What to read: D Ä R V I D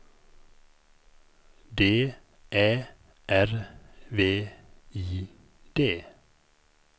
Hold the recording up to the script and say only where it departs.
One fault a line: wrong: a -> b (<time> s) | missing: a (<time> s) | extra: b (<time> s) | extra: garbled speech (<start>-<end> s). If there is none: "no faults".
no faults